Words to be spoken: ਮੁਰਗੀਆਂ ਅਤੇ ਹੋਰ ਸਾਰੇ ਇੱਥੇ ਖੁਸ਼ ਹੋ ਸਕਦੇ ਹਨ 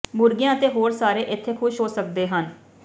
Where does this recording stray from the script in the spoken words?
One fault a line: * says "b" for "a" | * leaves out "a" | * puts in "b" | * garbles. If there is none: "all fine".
all fine